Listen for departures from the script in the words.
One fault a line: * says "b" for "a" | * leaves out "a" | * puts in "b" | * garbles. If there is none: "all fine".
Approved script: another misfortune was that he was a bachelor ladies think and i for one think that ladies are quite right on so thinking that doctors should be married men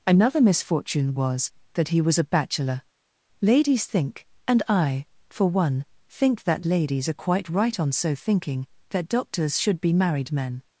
all fine